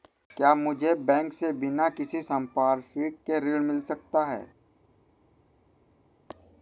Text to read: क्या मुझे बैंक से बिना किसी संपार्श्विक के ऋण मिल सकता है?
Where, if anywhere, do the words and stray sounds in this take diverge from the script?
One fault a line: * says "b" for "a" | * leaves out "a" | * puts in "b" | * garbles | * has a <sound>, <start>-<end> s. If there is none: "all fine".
all fine